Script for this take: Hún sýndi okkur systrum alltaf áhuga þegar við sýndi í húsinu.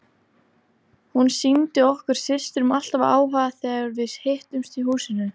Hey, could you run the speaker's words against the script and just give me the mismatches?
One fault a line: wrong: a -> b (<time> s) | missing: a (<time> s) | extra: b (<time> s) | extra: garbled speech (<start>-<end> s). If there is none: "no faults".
wrong: sýndi -> hittumst (4.3 s)